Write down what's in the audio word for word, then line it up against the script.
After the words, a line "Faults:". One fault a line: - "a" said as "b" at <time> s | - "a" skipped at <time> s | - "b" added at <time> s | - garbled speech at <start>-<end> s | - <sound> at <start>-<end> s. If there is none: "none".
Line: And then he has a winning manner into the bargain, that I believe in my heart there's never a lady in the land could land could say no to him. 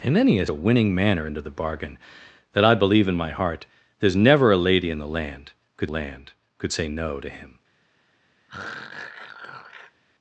And then he has a winning manner into the bargain, that I believe in my heart there's never a lady in the land could land could say no to him.
Faults:
- throat clearing at 8.5-10.0 s